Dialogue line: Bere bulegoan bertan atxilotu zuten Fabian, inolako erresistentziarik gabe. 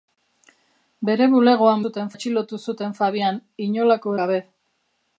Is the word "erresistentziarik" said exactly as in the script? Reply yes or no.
no